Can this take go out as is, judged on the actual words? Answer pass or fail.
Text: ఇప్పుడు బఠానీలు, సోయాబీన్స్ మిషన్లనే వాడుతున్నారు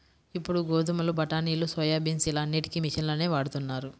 fail